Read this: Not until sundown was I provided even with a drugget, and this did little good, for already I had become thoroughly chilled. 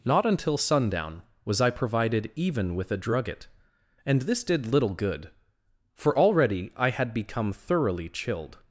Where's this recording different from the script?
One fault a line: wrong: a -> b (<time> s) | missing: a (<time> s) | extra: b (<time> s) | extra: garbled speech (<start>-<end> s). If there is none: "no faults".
no faults